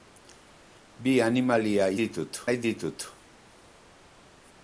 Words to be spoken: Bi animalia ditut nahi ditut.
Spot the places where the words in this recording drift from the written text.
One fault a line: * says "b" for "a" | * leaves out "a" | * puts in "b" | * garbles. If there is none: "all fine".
all fine